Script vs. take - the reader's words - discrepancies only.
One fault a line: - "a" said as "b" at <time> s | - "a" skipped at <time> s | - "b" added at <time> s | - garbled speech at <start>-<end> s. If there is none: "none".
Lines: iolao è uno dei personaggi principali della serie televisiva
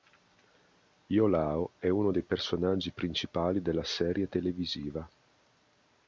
none